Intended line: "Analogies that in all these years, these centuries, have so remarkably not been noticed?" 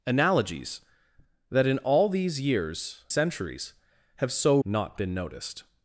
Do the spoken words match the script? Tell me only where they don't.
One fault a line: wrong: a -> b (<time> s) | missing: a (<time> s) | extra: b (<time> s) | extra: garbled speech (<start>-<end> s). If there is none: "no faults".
missing: these (3.0 s)
missing: remarkably (4.6 s)